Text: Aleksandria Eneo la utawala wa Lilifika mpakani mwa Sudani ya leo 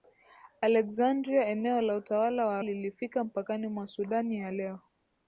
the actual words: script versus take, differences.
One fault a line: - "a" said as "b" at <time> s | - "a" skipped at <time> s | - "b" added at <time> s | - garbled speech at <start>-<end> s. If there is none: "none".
none